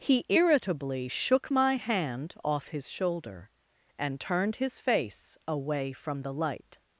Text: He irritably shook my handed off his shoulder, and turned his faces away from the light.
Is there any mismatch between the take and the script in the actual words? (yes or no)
yes